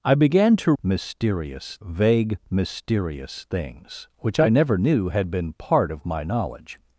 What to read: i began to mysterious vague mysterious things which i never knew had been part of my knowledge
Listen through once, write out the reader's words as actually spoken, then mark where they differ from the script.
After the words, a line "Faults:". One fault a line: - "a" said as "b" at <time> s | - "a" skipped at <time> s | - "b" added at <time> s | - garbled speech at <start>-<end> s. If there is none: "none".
i began to mysterious vague mysterious things which i never knew had been part of my knowledge
Faults:
none